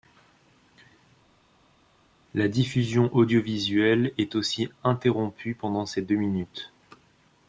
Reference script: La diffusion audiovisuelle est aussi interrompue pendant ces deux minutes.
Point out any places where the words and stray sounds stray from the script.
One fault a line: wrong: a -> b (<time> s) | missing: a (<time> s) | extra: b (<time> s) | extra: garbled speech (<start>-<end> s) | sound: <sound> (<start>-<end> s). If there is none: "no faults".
no faults